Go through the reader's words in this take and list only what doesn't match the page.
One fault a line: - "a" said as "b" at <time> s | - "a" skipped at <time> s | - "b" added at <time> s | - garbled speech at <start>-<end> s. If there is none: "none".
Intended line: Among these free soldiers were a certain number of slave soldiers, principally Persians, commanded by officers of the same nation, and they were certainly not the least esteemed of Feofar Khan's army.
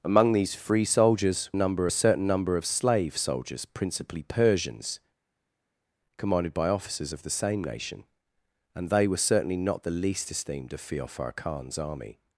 - "were" said as "number" at 1.6 s